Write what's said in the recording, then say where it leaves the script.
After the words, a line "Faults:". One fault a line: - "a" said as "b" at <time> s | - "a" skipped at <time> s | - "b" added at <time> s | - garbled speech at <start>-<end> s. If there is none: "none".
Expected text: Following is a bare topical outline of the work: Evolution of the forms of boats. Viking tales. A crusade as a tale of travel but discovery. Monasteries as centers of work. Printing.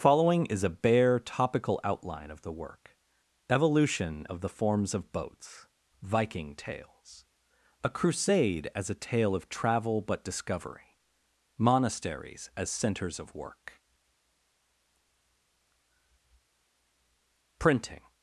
Following is a bare topical outline of the work: Evolution of the forms of boats. Viking tales. A crusade as a tale of travel but discovery. Monasteries as centers of work. Printing.
Faults:
none